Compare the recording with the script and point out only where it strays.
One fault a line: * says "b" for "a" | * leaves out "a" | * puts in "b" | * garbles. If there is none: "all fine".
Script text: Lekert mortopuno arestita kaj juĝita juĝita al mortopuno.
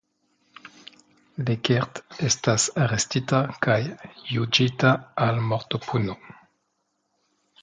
* says "estas" for "mortopuno"
* leaves out "juĝita"